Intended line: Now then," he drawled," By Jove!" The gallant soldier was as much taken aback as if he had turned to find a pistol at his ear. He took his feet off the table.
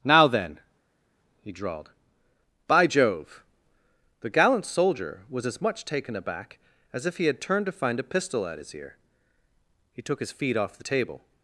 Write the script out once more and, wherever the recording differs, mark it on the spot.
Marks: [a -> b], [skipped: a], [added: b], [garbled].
Now then," he drawled," By Jove!" The gallant soldier was as much taken aback as if he had turned to find a pistol at his ear. He took his feet off the table.